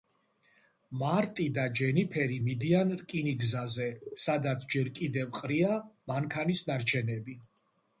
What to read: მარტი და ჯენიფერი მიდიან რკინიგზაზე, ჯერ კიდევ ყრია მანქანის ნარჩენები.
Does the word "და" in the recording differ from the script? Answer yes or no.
no